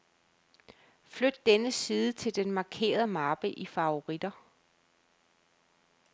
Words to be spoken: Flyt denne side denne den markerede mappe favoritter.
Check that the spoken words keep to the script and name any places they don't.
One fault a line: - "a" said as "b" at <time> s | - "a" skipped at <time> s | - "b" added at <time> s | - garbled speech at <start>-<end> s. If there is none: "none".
- "denne" said as "til" at 2.1 s
- "i" added at 3.5 s